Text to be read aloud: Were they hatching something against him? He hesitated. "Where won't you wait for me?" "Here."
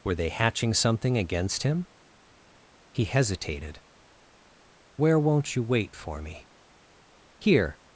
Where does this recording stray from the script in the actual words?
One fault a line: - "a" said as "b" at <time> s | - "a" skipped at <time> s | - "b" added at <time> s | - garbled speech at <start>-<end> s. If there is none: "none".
none